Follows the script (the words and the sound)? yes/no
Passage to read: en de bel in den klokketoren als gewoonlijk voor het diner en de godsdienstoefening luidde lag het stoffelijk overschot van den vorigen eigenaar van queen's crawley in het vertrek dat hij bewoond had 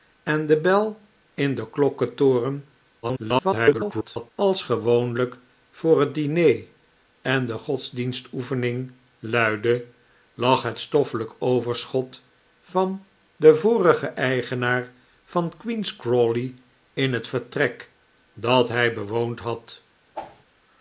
no